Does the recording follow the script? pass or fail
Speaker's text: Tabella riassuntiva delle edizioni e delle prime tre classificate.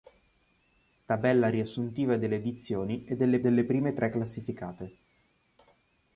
fail